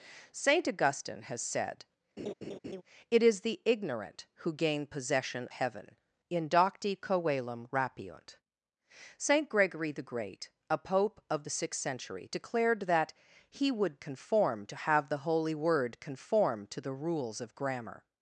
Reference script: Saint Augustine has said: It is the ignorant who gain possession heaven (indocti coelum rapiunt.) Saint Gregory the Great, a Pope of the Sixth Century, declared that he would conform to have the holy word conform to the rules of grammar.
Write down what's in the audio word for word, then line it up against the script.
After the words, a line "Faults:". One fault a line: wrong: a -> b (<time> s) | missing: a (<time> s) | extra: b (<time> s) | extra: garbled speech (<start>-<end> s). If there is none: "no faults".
Saint Augustine has said: It is the ignorant who gain possession heaven (indocti coelum rapiunt.) Saint Gregory the Great, a Pope of the Sixth Century, declared that he would conform to have the holy word conform to the rules of grammar.
Faults:
no faults